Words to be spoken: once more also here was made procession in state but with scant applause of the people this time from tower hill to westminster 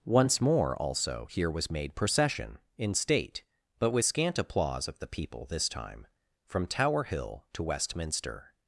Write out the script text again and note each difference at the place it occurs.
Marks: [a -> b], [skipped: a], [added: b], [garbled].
once more also here was made procession in state but with scant applause of the people this time from tower hill to westminster